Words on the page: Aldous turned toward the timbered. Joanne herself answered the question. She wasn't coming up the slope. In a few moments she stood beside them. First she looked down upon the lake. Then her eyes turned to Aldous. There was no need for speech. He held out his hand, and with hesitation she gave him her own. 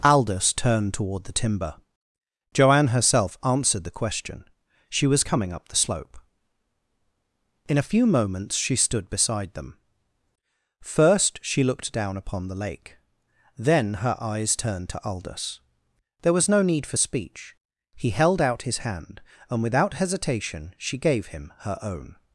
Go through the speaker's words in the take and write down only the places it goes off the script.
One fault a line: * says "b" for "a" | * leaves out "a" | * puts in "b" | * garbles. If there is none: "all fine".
* says "timber" for "timbered"
* says "was" for "wasn't"
* says "without" for "with"